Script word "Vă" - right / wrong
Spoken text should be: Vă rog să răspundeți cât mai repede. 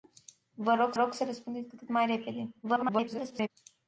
right